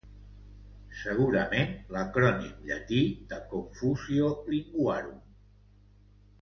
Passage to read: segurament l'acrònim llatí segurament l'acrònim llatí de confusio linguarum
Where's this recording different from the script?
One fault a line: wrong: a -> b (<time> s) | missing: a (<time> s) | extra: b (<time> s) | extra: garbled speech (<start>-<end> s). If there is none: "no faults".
missing: segurament l'acrònim llatí (3.0 s)